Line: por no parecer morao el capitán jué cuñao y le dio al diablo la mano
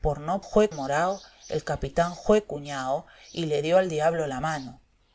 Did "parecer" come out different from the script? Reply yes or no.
yes